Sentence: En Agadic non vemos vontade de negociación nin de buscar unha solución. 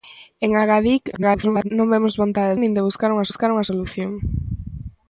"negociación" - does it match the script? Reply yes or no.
no